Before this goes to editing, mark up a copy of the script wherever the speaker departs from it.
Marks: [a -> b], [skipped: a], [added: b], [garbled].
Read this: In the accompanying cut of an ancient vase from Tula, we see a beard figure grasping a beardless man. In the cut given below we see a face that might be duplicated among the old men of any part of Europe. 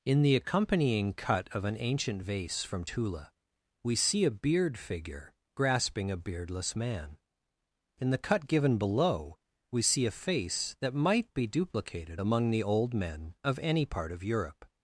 In the accompanying cut of an ancient vase from Tula, we see a beard figure grasping a beardless man. In the cut given below we see a face that might be duplicated among the old men of any part of Europe.